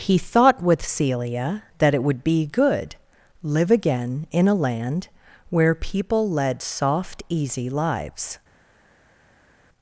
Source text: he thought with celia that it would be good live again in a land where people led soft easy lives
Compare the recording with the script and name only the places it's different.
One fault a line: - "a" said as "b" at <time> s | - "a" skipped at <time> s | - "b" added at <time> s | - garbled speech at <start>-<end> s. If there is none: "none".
none